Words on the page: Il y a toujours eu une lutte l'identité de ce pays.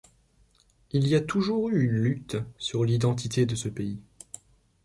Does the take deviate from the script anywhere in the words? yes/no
yes